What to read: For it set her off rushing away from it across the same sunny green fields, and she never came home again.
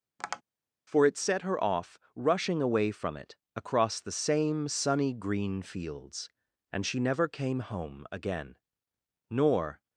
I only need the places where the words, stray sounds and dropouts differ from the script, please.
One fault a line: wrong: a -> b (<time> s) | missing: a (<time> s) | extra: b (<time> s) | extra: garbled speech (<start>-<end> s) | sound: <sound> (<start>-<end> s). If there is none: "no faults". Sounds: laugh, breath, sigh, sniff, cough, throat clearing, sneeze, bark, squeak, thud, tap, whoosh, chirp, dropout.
sound: tap (0.2-0.4 s)
extra: Nor (9.3 s)